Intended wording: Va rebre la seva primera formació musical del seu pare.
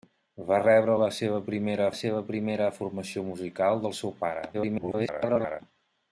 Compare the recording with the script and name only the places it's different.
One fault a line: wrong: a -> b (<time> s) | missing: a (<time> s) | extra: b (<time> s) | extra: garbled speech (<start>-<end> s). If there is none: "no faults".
extra: seva primera (2.0 s)
extra: garbled speech (4.5-5.6 s)